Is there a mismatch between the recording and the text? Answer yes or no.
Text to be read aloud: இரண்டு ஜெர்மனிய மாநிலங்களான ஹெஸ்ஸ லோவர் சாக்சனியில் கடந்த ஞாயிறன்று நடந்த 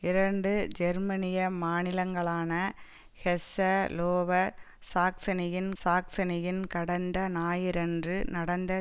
yes